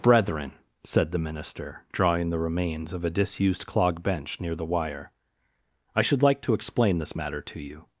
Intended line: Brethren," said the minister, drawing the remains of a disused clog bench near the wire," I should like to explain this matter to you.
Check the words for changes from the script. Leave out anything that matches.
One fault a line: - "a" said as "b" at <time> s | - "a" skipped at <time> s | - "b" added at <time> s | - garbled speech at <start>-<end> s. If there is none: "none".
none